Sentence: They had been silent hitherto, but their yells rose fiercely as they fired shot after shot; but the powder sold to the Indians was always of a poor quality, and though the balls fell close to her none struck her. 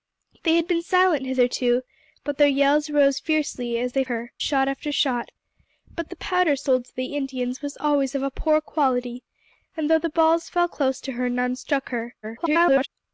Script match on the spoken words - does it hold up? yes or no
no